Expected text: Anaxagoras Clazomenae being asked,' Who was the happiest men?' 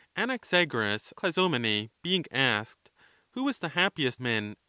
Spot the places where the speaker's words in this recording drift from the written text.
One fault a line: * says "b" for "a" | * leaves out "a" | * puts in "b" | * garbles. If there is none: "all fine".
all fine